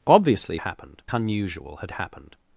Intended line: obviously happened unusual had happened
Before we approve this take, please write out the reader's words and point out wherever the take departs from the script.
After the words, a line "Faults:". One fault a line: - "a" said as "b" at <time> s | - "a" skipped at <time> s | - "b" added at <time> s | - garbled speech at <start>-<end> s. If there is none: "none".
obviously happened unusual had happened
Faults:
none